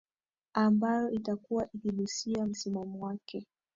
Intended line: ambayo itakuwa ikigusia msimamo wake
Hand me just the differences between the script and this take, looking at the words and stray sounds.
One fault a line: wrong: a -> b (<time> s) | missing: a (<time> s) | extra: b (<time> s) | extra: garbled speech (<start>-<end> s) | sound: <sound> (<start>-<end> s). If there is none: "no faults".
no faults